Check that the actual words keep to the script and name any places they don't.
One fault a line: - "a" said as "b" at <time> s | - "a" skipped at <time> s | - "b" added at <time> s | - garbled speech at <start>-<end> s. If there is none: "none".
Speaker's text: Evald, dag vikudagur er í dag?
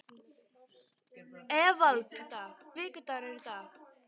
none